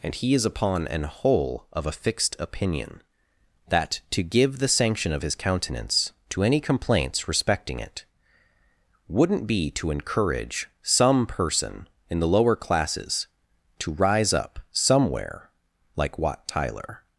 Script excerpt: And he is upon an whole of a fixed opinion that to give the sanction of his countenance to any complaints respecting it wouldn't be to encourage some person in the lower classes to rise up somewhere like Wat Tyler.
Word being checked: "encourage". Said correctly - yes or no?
yes